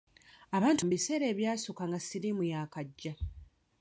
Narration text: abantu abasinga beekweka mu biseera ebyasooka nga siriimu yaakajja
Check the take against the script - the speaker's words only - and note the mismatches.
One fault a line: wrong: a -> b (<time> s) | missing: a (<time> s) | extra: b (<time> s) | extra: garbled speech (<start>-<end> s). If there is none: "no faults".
missing: abasinga beekweka (0.8 s)